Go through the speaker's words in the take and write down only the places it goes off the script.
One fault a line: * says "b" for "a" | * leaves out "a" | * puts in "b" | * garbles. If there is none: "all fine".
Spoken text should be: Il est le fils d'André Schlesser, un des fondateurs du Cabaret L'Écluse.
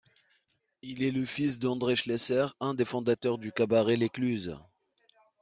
all fine